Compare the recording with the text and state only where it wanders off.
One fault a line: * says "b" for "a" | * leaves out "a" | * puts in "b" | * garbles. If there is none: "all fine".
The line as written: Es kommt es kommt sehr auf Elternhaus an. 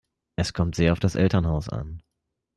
* leaves out "es kommt"
* puts in "das"